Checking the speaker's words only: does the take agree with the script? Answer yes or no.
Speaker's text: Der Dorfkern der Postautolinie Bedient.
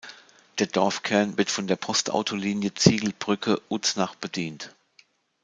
no